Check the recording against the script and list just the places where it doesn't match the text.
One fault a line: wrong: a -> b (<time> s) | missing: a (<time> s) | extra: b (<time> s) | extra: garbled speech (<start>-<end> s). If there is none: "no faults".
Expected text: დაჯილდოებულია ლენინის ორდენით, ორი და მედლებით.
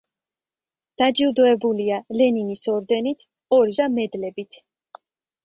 no faults